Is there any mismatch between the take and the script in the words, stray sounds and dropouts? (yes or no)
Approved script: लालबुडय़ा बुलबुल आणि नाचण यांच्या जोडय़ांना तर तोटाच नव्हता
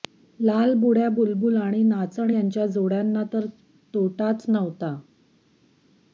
no